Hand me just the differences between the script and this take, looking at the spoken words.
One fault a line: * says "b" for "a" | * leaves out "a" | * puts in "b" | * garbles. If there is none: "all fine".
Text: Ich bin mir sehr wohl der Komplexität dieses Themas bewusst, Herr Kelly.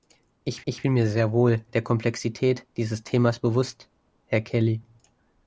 * puts in "ich"